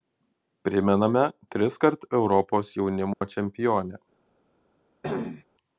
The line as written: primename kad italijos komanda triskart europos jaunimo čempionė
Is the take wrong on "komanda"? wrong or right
wrong